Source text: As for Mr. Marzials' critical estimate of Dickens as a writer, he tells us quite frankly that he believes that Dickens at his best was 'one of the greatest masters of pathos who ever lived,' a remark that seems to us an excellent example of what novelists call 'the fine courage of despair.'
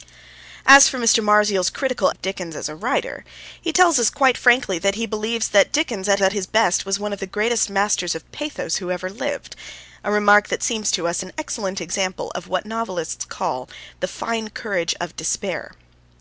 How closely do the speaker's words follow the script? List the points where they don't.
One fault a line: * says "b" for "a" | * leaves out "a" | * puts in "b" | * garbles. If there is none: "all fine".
* leaves out "estimate"
* puts in "at"